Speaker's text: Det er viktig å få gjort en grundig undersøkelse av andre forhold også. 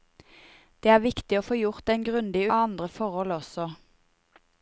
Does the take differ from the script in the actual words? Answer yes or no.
yes